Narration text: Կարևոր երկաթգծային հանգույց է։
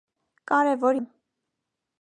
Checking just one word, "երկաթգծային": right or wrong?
wrong